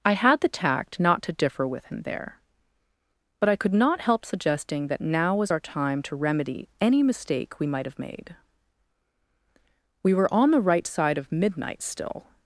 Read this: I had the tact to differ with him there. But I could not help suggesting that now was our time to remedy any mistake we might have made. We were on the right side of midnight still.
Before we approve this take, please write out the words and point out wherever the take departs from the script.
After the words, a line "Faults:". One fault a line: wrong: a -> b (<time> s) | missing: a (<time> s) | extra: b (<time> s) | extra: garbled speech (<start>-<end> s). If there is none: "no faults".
I had the tact not to differ with him there. But I could not help suggesting that now was our time to remedy any mistake we might have made. We were on the right side of midnight still.
Faults:
extra: not (1.0 s)